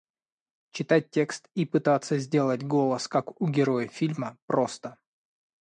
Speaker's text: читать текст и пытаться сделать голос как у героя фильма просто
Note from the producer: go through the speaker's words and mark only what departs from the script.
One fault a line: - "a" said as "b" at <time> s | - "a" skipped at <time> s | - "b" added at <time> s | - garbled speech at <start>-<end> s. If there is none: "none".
none